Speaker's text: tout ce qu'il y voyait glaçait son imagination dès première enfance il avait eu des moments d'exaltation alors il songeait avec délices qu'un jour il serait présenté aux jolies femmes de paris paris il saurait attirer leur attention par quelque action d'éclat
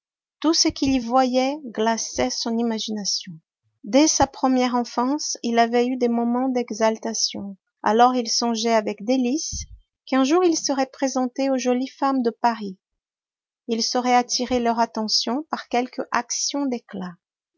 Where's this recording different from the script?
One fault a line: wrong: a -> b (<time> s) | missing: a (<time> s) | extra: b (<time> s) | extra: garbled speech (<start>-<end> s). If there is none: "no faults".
extra: sa (4.1 s)
missing: paris (12.8 s)